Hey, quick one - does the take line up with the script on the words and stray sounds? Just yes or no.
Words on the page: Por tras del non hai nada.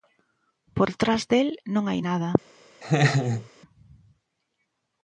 no